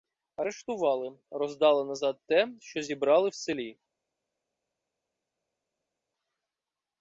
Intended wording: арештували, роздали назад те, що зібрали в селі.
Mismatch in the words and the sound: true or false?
false